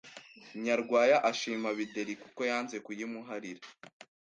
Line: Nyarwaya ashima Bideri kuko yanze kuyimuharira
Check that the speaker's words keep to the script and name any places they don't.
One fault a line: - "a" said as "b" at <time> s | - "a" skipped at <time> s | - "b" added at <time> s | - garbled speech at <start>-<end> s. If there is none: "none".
none